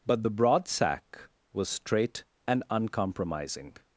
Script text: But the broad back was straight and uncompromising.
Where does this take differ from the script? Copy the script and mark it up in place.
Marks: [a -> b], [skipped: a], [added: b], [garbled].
But the broad [back -> sack] was straight and uncompromising.